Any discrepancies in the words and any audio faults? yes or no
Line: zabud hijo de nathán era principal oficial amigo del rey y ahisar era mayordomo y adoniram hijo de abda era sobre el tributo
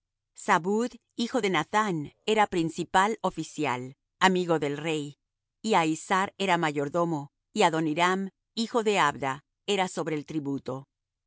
no